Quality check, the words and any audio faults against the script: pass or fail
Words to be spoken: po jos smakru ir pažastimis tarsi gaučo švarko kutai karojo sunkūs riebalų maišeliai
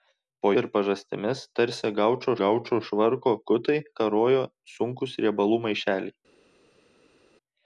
fail